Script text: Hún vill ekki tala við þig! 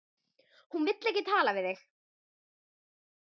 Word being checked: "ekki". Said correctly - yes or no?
yes